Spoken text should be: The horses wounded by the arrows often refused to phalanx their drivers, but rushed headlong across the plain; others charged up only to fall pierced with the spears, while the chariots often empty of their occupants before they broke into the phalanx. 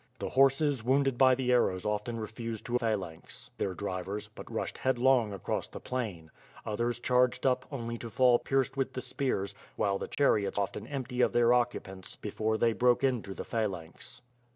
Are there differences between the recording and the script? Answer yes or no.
no